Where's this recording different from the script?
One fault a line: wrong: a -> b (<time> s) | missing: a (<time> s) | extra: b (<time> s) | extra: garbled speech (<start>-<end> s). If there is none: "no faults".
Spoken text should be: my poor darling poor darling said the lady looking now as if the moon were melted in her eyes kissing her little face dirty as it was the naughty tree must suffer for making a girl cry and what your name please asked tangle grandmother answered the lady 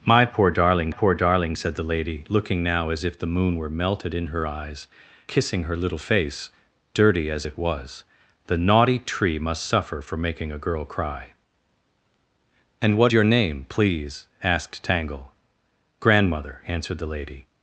no faults